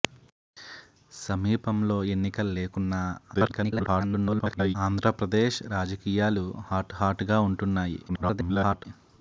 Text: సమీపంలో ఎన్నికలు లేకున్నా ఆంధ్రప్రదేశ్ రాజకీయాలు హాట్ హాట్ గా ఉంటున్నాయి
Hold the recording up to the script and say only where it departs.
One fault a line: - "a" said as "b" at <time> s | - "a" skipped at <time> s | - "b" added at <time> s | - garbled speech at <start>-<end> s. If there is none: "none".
- garbled speech at 3.3-4.8 s
- garbled speech at 8.1-8.9 s